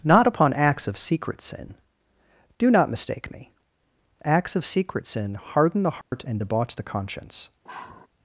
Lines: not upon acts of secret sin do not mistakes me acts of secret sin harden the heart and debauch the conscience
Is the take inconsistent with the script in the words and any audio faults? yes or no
yes